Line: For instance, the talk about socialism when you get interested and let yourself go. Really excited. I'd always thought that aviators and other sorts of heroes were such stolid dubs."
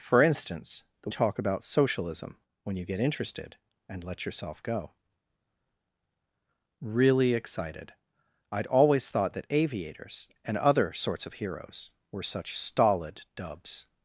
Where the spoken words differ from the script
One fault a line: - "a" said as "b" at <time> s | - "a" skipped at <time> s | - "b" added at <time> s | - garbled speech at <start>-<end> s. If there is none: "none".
none